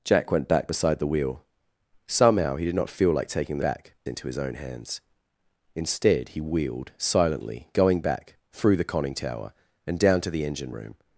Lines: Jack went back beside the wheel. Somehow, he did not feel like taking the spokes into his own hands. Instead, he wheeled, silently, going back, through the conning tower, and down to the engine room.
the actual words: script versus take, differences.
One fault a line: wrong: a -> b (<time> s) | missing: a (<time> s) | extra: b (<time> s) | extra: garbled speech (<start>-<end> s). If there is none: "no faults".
wrong: spokes -> back (3.6 s)